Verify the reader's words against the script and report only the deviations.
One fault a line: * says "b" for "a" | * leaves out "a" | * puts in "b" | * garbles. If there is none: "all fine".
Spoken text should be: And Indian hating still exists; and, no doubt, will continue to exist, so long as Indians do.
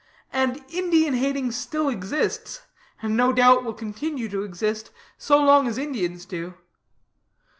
all fine